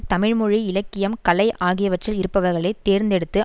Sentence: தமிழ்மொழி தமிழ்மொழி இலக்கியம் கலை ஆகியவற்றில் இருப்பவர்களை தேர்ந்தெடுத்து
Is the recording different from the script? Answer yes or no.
yes